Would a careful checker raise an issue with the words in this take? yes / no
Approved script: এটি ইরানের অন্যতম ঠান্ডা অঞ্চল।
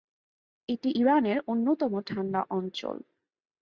no